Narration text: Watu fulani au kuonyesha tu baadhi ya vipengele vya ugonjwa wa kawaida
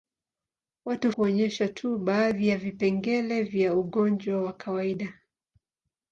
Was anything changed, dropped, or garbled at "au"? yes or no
yes